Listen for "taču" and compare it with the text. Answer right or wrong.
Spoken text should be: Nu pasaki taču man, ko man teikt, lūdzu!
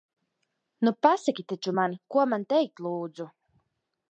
right